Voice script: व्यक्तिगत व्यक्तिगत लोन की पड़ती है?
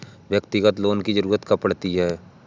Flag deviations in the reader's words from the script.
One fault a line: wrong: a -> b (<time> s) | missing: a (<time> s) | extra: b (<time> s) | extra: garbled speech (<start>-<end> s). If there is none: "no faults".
missing: व्यक्तिगत (0.8 s)
extra: ज़रूरत कब (1.1 s)